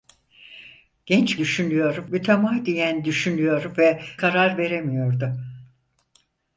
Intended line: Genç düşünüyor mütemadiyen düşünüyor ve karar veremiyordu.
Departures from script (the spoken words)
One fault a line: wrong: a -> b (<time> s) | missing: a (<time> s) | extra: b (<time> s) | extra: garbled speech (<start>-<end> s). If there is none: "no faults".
no faults